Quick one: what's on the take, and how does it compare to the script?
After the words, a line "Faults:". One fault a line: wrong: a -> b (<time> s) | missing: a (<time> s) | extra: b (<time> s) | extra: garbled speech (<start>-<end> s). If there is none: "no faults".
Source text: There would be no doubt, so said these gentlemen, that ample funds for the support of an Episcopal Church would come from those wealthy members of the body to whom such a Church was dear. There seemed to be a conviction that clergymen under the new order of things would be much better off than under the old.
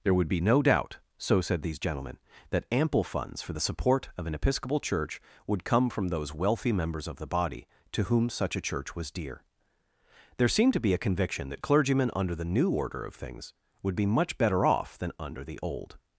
There would be no doubt, so said these gentlemen, that ample funds for the support of an Episcopal Church would come from those wealthy members of the body to whom such a Church was dear. There seemed to be a conviction that clergymen under the new order of things would be much better off than under the old.
Faults:
no faults